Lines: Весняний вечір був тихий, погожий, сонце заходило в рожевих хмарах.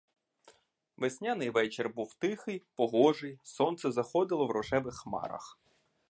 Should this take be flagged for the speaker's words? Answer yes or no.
no